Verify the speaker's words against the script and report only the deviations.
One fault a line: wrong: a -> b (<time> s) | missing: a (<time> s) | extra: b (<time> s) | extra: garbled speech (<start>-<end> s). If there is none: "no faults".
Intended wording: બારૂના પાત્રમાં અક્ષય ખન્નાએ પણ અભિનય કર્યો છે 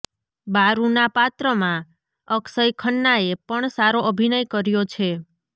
extra: સારો (3.7 s)